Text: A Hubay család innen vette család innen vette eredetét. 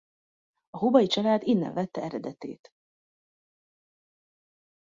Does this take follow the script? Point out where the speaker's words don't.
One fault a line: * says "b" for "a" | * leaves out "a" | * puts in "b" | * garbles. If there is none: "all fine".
* leaves out "család innen vette"